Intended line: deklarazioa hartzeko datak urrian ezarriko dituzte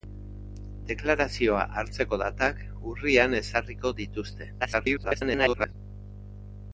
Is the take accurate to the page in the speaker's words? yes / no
no